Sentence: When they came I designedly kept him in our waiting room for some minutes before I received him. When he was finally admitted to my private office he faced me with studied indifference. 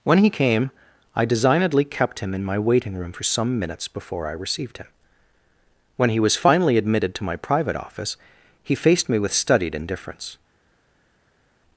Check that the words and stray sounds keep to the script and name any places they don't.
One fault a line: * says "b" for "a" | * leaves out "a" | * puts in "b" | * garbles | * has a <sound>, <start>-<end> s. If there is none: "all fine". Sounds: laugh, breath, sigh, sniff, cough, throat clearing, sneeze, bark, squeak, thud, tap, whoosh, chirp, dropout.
* says "he" for "they"
* says "my" for "our"